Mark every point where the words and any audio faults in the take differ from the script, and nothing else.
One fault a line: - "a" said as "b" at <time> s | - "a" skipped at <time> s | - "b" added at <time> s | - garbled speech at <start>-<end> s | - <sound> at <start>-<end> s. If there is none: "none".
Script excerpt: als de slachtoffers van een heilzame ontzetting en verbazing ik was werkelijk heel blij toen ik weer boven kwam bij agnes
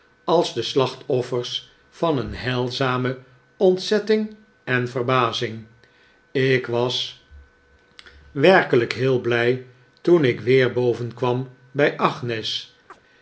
- chirp at 12.9-13.0 s